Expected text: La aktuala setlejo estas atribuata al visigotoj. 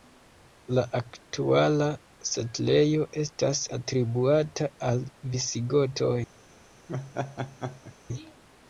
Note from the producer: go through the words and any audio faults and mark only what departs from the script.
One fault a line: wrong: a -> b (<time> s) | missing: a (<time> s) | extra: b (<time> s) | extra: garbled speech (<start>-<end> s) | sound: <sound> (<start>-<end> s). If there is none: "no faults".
sound: laugh (6.9-8.0 s)